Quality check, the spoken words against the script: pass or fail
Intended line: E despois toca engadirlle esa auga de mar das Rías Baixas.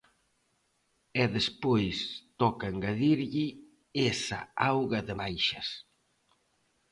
fail